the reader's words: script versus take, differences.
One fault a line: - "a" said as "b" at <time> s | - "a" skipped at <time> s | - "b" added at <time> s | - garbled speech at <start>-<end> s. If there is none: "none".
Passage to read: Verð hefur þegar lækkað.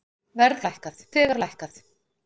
- "hefur" said as "lækkað" at 0.7 s